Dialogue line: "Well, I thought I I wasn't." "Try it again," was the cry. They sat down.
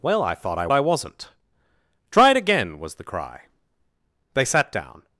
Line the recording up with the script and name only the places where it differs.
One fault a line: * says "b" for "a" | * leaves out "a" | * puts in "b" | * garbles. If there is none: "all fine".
all fine